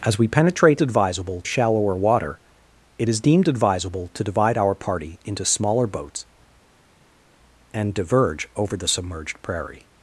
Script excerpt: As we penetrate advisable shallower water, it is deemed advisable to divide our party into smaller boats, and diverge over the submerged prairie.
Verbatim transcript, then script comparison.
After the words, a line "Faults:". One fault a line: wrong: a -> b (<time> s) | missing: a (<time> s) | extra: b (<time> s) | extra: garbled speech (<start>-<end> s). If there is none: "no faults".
As we penetrate advisable shallower water, it is deemed advisable to divide our party into smaller boats, and diverge over the submerged prairie.
Faults:
no faults